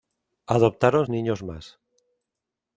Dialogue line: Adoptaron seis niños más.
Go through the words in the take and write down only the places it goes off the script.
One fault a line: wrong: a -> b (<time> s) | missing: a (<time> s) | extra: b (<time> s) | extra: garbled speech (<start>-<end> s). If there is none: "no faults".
missing: seis (1.1 s)